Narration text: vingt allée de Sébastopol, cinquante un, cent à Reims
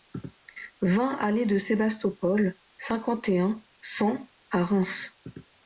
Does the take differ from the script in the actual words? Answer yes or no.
yes